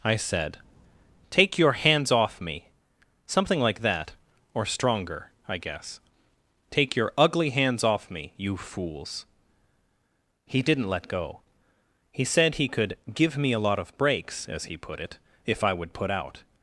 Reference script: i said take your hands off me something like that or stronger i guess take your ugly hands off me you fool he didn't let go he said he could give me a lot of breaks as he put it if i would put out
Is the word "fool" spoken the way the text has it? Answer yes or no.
no